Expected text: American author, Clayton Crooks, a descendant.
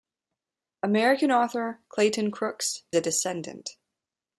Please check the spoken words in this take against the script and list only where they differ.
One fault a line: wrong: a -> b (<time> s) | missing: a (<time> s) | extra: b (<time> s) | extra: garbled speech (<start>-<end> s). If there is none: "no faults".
no faults